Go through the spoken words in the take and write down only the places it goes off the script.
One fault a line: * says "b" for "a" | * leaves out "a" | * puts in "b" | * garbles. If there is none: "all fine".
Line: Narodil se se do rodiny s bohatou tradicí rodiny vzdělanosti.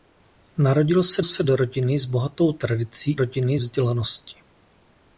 all fine